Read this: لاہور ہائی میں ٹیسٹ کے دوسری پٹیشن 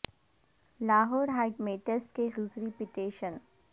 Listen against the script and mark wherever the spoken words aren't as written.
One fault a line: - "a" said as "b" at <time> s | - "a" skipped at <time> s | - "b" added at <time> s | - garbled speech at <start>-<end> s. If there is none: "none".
none